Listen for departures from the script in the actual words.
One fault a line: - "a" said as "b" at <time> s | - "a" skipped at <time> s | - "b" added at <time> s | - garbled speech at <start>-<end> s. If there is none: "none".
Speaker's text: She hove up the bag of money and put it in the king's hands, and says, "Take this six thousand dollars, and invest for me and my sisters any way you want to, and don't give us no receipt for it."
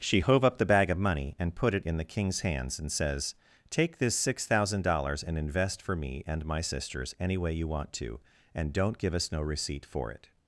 none